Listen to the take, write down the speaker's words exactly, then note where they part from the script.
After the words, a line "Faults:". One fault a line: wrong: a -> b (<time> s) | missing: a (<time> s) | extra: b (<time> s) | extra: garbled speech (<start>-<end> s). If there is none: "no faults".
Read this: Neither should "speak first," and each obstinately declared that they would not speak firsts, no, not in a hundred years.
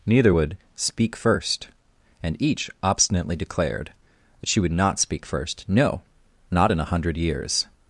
Neither would "speak first," and each obstinately declared that she would not speak first, no, not in a hundred years.
Faults:
wrong: should -> would (0.3 s)
wrong: they -> she (4.5 s)
wrong: firsts -> first (5.3 s)